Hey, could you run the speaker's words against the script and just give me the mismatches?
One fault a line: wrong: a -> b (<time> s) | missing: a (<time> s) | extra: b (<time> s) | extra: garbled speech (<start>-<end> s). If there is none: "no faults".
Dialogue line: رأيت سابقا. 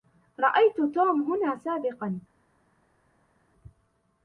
extra: توم هنا (0.8 s)